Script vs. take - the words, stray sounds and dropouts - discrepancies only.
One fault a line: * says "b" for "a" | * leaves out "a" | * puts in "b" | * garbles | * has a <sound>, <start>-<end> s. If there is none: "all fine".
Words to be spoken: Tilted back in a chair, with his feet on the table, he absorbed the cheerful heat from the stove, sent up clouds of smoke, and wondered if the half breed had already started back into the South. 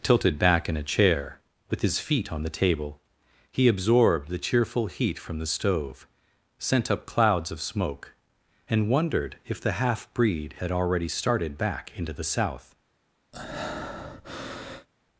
* has a breath, 13.3-14.9 s